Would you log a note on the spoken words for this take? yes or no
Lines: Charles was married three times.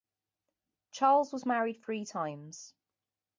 no